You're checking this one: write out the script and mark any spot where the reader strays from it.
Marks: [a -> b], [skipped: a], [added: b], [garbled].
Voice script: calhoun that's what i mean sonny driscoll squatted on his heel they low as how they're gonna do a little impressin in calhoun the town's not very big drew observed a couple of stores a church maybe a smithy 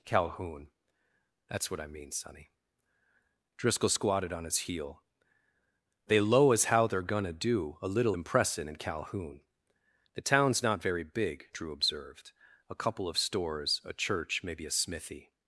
calhoun that's what i mean sonny driscoll squatted on his heel they low as how they're gonna do a little impressin in calhoun the town's not very big drew observed a couple of stores a church maybe a smithy